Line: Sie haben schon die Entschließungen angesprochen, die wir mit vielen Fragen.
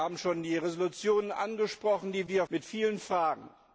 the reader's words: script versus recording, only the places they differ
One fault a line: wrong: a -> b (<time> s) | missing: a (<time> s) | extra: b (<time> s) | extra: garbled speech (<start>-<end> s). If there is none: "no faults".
no faults